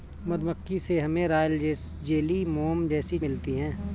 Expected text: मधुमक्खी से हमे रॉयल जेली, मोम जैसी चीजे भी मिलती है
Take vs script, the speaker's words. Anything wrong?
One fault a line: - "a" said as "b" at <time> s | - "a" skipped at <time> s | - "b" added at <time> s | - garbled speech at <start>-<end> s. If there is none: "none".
- "चीजे भी" skipped at 3.2 s